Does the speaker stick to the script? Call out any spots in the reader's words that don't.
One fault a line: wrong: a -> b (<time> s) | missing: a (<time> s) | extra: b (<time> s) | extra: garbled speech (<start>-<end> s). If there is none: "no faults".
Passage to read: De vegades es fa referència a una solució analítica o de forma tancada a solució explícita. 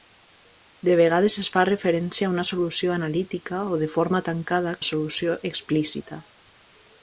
no faults